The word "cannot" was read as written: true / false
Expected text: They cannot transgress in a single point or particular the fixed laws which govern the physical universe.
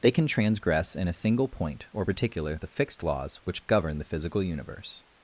false